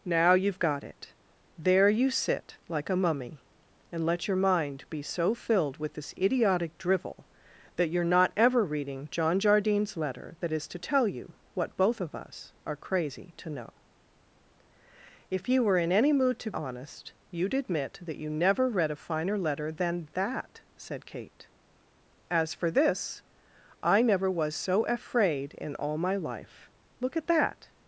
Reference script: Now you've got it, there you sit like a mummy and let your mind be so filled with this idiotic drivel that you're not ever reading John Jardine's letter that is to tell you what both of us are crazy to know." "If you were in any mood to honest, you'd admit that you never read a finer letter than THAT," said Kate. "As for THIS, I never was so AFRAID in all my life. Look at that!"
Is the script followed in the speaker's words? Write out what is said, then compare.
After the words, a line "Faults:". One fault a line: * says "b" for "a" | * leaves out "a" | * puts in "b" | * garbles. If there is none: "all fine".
Now you've got it, there you sit like a mummy and let your mind be so filled with this idiotic drivel that you're not ever reading John Jardine's letter that is to tell you what both of us are crazy to know." "If you were in any mood to honest, you'd admit that you never read a finer letter than THAT," said Kate. "As for THIS, I never was so AFRAID in all my life. Look at that!"
Faults:
all fine